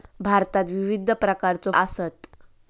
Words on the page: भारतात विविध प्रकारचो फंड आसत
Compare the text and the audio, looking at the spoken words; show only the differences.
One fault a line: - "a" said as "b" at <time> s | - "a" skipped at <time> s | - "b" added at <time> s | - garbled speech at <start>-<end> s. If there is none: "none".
- "फंड" skipped at 1.7 s